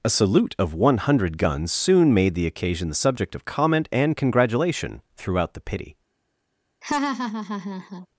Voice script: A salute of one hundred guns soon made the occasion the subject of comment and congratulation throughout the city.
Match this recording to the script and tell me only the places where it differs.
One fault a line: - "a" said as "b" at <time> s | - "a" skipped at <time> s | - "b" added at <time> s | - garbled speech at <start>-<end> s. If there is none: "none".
- "city" said as "pity" at 5.6 s